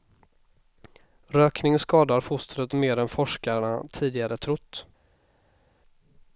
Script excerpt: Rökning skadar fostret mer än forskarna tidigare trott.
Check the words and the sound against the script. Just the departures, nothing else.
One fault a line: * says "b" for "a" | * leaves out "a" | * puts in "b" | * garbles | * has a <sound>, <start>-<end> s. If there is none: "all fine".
all fine